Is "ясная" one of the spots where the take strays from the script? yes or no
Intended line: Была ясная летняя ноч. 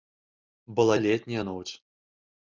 yes